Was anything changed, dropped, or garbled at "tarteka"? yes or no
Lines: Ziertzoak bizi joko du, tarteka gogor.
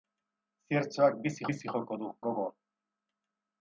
yes